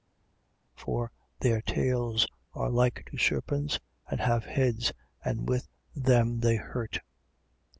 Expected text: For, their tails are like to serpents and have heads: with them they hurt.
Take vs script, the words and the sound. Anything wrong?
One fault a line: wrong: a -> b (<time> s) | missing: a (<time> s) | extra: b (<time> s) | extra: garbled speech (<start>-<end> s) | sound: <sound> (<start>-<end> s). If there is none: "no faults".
extra: and (5.2 s)